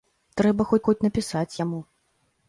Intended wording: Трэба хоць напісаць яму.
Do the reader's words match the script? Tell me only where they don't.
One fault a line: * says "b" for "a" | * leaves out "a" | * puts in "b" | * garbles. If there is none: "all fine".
* puts in "хоць"